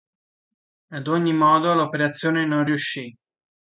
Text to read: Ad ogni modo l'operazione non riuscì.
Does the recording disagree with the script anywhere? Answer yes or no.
no